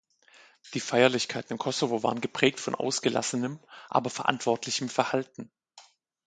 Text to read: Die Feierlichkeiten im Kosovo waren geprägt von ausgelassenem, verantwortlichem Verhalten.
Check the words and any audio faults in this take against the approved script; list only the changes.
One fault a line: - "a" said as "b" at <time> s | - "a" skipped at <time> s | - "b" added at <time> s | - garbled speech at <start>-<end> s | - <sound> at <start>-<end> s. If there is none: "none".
- "aber" added at 3.9 s